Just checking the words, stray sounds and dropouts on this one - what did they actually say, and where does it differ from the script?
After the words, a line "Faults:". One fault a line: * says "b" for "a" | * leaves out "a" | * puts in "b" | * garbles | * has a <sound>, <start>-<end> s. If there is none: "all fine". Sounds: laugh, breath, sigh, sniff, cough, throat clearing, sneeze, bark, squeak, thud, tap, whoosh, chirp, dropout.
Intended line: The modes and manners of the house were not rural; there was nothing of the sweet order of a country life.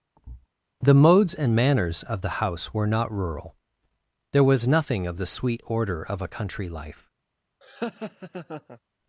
The modes and manners of the house were not rural; there was nothing of the sweet order of a country life.
Faults:
* has a thud, 0.2-0.5 s
* has a laugh, 7.6-8.8 s